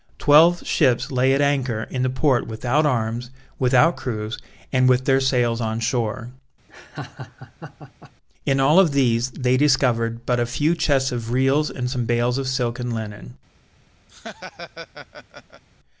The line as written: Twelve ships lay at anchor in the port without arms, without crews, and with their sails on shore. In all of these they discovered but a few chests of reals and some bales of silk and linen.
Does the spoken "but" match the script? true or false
true